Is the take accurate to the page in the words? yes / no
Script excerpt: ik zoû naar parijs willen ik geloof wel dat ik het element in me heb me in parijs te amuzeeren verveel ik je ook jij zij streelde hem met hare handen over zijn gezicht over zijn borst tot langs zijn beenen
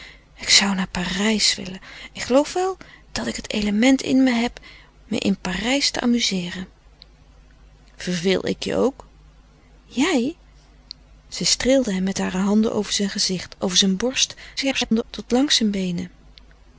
no